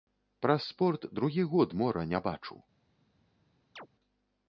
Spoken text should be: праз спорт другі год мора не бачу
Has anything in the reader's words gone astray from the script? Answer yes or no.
no